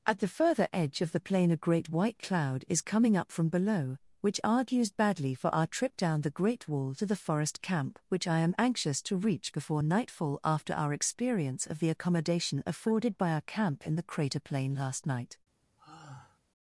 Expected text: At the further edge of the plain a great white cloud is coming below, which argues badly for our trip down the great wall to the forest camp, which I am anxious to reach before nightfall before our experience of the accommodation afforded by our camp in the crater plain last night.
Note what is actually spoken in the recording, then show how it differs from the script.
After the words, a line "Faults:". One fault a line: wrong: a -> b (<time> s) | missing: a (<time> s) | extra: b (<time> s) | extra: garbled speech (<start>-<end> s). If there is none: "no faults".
At the further edge of the plain a great white cloud is coming up from below, which argues badly for our trip down the great wall to the forest camp, which I am anxious to reach before nightfall after our experience of the accommodation afforded by our camp in the crater plain last night.
Faults:
extra: up from (3.1 s)
wrong: before -> after (10.4 s)